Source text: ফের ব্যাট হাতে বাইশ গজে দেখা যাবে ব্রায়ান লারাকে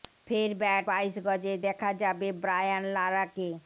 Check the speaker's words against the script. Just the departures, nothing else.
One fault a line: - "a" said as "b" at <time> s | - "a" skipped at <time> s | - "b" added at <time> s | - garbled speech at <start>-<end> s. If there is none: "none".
- "হাতে" skipped at 0.8 s